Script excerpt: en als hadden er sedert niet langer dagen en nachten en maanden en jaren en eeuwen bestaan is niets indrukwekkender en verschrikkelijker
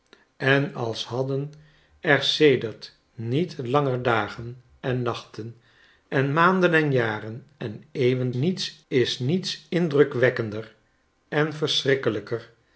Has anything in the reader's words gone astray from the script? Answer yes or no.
yes